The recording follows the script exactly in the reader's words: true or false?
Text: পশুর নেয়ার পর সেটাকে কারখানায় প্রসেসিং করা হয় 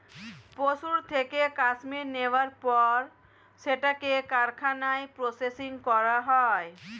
false